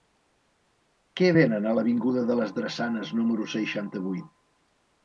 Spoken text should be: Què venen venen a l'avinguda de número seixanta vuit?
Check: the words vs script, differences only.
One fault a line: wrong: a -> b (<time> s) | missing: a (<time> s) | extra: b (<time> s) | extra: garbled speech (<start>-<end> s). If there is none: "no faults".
missing: venen (1.7 s)
extra: les Drassanes (2.4 s)